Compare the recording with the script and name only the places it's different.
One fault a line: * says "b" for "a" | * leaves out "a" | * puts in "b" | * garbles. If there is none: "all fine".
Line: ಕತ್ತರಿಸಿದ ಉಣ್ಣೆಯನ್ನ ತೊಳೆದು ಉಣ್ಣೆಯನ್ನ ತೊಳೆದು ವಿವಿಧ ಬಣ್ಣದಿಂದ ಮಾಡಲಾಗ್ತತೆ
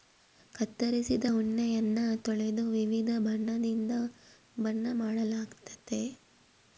* leaves out "ಉಣ್ಣೆಯನ್ನ ತೊಳೆದು"
* puts in "ಬಣ್ಣ"